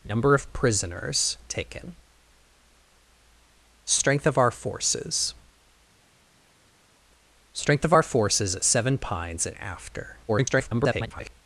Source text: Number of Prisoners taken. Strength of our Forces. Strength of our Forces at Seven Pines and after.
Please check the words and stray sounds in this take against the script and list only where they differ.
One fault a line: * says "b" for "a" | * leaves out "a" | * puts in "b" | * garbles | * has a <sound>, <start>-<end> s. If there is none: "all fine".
* garbles